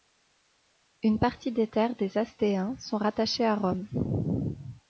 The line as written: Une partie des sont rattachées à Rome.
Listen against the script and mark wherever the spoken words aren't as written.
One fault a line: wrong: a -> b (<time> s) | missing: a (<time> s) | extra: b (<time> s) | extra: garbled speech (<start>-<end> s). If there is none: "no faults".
extra: terres des Astéens (1.6 s)